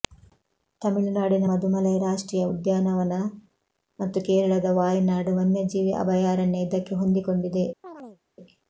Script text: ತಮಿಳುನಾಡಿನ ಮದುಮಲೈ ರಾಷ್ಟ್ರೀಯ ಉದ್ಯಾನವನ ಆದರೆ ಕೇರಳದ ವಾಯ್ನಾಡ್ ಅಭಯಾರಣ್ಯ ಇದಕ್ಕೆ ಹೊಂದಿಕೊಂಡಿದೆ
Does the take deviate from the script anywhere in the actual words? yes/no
yes